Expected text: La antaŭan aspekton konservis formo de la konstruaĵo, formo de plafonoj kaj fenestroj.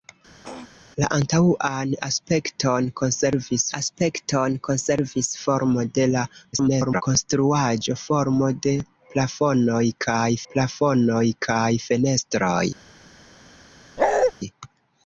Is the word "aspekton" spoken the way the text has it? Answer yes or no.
yes